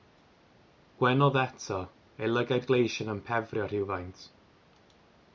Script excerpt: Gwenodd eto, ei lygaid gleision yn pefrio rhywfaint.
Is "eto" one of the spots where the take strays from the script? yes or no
no